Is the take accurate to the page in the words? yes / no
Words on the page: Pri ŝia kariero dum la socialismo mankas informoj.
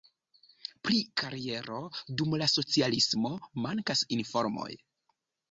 no